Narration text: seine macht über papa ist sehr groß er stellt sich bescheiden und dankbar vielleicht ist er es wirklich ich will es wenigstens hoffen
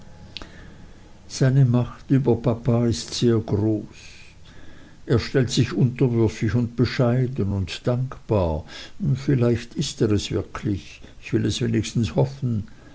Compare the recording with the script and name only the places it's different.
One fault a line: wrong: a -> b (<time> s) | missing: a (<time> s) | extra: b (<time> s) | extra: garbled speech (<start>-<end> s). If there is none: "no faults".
extra: unterwürfig und (5.7 s)